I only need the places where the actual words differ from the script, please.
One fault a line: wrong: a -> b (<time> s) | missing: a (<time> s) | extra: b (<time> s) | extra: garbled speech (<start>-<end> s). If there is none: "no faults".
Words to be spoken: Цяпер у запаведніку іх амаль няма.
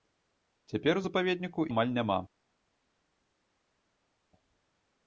missing: іх (1.7 s)